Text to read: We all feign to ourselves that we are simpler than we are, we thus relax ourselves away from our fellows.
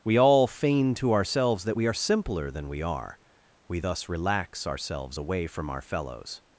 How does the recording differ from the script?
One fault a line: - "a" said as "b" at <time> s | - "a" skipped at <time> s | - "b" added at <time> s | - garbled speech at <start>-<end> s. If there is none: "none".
none